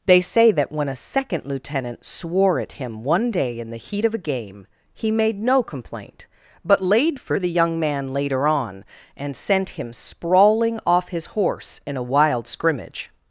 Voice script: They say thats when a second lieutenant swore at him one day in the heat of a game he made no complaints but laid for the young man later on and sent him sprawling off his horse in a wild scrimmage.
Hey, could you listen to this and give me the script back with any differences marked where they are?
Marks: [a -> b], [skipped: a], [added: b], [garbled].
They say [thats -> that] when a second lieutenant swore at him one day in the heat of a game he made no [complaints -> complaint] but laid for the young man later on and sent him sprawling off his horse in a wild scrimmage.